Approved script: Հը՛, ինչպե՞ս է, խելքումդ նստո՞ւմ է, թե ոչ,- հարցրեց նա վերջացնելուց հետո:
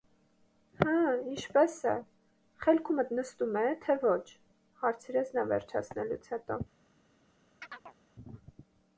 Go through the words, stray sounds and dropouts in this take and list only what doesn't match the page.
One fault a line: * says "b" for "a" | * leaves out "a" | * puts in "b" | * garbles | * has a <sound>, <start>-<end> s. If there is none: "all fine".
* has a chirp, 7.6-8.0 s